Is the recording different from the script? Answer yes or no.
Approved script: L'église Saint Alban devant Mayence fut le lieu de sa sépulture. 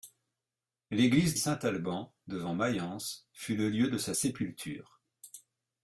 no